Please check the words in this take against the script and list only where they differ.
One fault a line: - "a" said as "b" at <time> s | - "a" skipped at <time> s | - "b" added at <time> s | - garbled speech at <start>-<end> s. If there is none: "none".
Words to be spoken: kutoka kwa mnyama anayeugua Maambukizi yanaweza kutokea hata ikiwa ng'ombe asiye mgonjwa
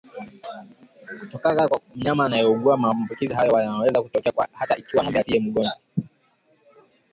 - "hayo" added at 3.3 s